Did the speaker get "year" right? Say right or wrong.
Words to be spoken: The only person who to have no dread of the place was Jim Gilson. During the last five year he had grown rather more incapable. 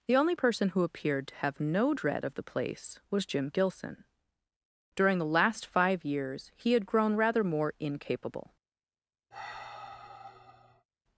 wrong